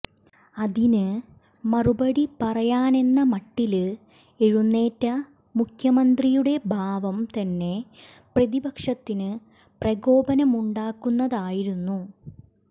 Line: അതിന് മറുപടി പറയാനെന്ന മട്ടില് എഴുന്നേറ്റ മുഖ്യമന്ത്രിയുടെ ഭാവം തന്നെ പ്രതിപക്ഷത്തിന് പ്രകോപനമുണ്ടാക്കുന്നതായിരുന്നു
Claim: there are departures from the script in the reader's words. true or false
false